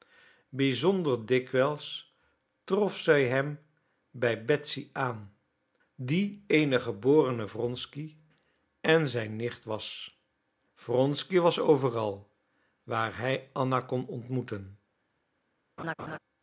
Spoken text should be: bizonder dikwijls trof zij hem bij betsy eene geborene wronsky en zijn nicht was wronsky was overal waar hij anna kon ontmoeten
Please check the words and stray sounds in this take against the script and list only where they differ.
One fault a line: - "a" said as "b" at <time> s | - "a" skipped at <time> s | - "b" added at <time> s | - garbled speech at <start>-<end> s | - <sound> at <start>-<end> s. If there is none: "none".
- "aan die" added at 4.9 s
- laugh at 15.8-16.2 s